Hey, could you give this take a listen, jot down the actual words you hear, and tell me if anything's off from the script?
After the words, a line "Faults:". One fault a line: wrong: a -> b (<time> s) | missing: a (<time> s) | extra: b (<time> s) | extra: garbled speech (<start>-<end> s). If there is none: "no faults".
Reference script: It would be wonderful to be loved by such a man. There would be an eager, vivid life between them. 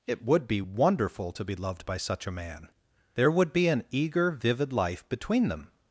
It would be wonderful to be loved by such a man. There would be an eager, vivid life between them.
Faults:
no faults